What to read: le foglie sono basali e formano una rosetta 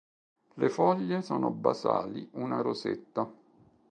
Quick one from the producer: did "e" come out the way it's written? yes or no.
no